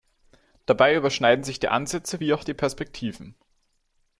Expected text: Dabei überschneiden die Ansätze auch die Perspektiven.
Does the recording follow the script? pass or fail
fail